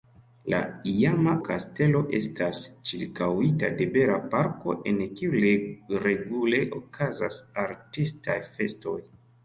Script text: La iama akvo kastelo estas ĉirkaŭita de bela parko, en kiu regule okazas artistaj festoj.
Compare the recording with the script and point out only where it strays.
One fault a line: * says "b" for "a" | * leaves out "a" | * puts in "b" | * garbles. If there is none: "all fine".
* leaves out "akvo"